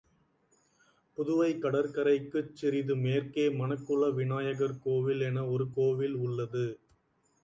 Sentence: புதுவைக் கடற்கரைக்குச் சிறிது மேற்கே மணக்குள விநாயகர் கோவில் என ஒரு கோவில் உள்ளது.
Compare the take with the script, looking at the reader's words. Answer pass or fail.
pass